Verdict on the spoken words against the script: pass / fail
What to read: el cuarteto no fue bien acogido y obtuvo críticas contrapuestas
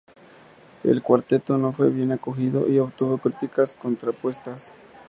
pass